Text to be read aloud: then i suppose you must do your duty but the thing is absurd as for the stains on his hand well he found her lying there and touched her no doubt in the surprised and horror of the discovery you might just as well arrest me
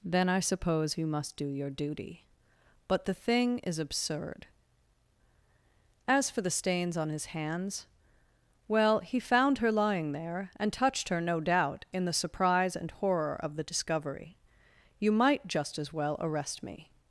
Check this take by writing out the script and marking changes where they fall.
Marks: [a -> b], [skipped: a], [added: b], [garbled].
then i suppose you must do your duty but the thing is absurd as for the stains on his [hand -> hands] well he found her lying there and touched her no doubt in the [surprised -> surprise] and horror of the discovery you might just as well arrest me